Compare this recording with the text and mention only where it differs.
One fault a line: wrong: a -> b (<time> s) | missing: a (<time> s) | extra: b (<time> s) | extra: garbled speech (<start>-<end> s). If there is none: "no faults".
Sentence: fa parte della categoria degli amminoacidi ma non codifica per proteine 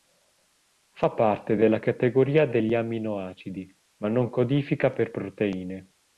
no faults